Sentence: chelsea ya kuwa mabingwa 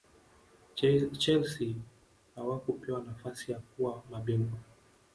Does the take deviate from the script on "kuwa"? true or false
false